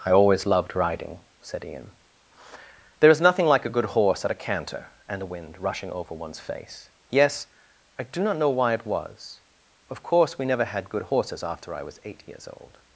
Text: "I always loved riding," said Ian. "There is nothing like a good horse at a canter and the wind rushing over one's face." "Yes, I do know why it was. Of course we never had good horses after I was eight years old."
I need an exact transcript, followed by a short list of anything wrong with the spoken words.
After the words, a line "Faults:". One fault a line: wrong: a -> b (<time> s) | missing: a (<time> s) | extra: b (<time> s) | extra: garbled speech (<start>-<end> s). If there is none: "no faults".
"I always loved riding," said Ian. "There is nothing like a good horse at a canter and the wind rushing over one's face." "Yes, I do not know why it was. Of course we never had good horses after I was eight years old."
Faults:
extra: not (8.2 s)